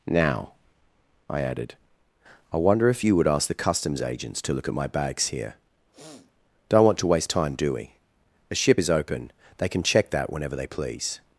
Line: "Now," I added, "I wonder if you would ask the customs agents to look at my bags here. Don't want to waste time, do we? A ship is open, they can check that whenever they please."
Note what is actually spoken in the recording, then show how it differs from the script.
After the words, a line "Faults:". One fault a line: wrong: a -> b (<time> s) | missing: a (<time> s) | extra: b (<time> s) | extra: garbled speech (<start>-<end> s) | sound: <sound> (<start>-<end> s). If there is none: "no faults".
"Now," I added, "I wonder if you would ask the customs agents to look at my bags here. Don't want to waste time, do we? A ship is open, they can check that whenever they please."
Faults:
sound: sniff (5.9-6.3 s)